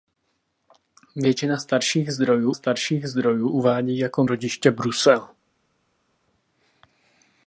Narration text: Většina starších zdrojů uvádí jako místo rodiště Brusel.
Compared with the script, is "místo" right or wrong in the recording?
wrong